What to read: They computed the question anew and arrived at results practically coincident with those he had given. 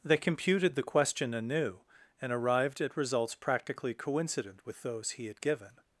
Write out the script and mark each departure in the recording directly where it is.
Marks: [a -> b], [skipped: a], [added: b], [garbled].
They computed the question anew and arrived at results practically coincident with those he had given.